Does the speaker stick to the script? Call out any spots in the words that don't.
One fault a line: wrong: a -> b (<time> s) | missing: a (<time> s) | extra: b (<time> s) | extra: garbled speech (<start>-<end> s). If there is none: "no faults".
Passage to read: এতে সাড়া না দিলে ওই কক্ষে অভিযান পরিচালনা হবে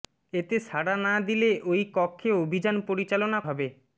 no faults